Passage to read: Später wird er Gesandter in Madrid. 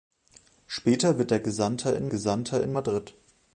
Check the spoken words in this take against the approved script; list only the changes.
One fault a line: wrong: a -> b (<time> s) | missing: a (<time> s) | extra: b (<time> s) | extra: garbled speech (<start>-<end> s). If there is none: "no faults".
extra: Gesandter in (2.1 s)